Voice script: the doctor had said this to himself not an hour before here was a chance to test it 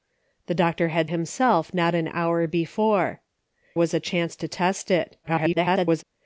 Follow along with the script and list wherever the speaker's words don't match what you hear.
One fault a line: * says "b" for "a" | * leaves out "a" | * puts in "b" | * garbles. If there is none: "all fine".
* leaves out "said this to"
* leaves out "here"
* garbles